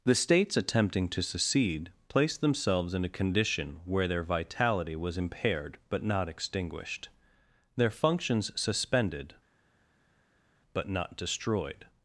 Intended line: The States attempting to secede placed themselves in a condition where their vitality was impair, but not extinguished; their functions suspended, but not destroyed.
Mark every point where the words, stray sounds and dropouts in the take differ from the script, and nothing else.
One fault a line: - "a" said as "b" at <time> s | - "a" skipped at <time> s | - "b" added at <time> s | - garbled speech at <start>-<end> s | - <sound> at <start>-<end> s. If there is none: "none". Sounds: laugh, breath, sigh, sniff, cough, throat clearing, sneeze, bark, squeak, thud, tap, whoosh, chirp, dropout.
- "impair" said as "impaired" at 5.2 s